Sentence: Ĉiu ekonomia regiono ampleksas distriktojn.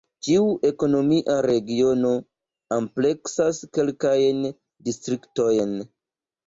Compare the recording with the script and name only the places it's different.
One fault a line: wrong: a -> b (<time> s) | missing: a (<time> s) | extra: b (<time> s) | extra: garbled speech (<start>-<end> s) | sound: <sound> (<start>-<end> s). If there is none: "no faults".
extra: kelkajn (3.8 s)